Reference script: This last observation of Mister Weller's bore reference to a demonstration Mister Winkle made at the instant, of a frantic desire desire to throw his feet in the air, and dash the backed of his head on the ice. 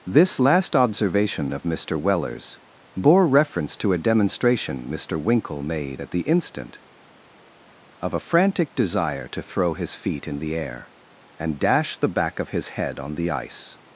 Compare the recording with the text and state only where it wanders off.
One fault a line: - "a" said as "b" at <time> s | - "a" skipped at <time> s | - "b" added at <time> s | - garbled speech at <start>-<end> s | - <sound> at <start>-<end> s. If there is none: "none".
- "desire" skipped at 9.3 s
- "backed" said as "back" at 12.1 s